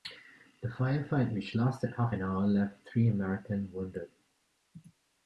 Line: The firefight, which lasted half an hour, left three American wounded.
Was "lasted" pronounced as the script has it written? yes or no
yes